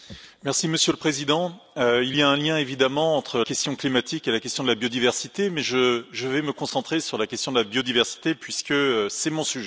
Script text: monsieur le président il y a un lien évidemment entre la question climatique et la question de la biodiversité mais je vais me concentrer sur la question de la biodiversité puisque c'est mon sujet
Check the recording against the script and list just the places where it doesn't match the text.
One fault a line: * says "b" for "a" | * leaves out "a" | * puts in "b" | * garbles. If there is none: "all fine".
* leaves out "la"